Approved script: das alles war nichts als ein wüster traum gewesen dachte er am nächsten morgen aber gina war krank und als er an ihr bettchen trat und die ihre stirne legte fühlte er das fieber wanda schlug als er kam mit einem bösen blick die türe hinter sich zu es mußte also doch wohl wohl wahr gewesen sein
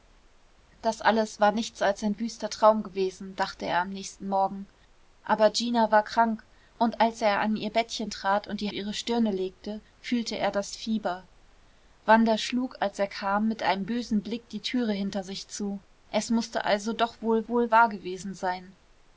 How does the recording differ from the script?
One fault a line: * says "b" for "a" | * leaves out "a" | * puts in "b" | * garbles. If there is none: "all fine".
all fine